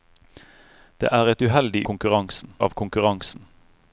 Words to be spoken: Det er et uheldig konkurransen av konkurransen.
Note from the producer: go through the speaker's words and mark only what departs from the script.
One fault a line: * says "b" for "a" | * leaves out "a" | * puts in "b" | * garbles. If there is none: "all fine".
all fine